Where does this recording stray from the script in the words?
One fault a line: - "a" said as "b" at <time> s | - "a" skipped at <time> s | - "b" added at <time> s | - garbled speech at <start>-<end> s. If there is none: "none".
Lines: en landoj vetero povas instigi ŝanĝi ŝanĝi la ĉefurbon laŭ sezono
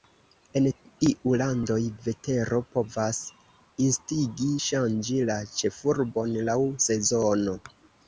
- "iu" added at 1.1 s
- "ŝanĝi" skipped at 5.2 s